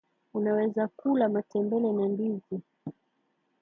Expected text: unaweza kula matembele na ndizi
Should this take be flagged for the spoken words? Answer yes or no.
no